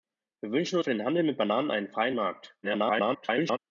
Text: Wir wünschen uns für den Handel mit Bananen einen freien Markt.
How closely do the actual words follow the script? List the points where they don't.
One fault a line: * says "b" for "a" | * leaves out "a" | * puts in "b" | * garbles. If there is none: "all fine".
* leaves out "uns"
* garbles